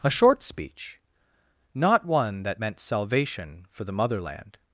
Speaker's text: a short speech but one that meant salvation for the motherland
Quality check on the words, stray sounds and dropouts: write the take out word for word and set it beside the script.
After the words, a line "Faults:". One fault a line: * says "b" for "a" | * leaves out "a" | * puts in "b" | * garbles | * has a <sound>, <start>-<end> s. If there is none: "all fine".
a short speech not one that meant salvation for the motherland
Faults:
* says "not" for "but"